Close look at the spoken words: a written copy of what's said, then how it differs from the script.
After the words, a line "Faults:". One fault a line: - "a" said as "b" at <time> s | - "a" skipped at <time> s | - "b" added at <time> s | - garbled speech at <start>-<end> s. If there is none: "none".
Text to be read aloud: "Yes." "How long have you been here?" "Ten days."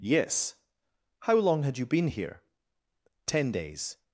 "Yes." "How long had you been here?" "Ten days."
Faults:
- "have" said as "had" at 1.6 s